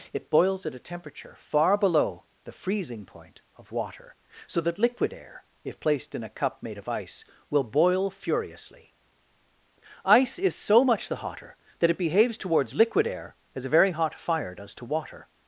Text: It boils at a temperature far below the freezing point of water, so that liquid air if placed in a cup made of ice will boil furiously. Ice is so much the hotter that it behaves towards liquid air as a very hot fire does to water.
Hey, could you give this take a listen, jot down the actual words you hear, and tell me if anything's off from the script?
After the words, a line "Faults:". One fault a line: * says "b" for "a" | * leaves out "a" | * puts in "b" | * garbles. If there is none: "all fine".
It boils at a temperature far below the freezing point of water, so that liquid air if placed in a cup made of ice will boil furiously. Ice is so much the hotter that it behaves towards liquid air as a very hot fire does to water.
Faults:
all fine